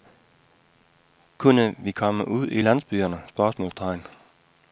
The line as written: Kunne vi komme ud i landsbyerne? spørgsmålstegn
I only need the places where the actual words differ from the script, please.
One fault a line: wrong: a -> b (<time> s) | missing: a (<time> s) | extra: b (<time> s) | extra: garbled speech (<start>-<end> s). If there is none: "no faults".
no faults